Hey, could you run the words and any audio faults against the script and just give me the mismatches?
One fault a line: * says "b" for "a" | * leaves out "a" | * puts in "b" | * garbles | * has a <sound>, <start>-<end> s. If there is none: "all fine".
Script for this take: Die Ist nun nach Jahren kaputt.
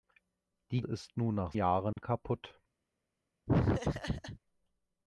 * has a dropout, 1.9-2.0 s
* has a laugh, 3.5-4.4 s